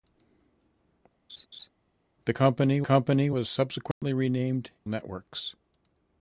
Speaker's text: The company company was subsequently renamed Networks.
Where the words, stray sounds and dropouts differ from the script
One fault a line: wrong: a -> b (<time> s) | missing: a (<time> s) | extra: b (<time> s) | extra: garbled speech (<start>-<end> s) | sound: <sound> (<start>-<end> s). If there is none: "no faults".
sound: laugh (1.3-1.7 s)
sound: dropout (3.9-4.0 s)